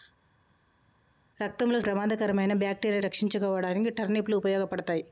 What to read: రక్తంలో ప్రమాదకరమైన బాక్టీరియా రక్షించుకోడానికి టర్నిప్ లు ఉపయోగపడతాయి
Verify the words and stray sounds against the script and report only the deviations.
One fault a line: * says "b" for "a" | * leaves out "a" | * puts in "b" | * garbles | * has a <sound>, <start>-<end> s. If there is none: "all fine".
all fine